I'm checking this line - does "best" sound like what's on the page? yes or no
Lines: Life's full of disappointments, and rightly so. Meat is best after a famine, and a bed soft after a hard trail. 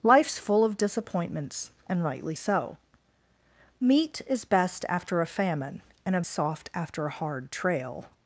yes